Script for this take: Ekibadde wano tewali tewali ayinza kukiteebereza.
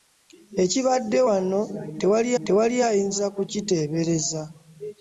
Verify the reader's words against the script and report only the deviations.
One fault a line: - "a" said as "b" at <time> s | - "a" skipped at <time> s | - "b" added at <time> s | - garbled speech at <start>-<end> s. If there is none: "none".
none